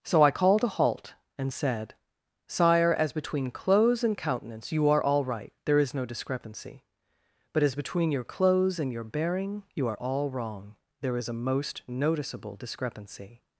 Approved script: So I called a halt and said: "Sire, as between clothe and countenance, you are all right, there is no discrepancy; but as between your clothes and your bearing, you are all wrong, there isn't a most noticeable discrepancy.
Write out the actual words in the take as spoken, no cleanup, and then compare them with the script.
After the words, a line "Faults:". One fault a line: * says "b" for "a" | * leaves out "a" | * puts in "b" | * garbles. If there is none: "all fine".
So I called a halt and said: "Sire, as between clothes and countenance, you are all right, there is no discrepancy; but as between your clothes and your bearing, you are all wrong, there is a most noticeable discrepancy.
Faults:
* says "clothes" for "clothe"
* says "is" for "isn't"